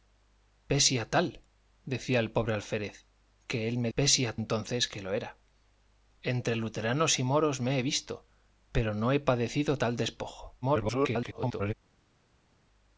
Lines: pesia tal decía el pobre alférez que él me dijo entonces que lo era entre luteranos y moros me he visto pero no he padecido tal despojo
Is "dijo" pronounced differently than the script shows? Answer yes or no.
yes